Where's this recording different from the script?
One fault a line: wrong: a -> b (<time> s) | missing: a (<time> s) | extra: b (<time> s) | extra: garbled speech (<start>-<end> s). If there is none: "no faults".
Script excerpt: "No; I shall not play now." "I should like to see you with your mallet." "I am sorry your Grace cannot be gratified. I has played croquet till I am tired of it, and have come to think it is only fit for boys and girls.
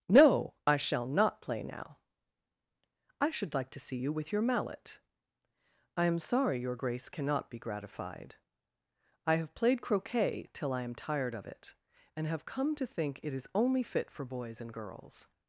wrong: has -> have (9.4 s)